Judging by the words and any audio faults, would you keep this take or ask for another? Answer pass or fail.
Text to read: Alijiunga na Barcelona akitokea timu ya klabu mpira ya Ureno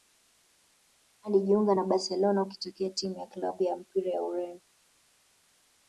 fail